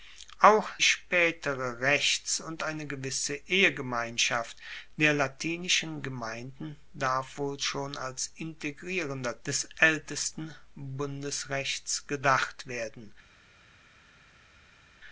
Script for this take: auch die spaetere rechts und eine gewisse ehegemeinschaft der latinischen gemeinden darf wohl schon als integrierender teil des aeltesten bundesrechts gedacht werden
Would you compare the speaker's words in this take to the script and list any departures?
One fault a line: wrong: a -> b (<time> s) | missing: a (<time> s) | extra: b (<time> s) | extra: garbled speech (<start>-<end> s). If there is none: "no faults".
missing: die (0.7 s)
missing: teil (9.4 s)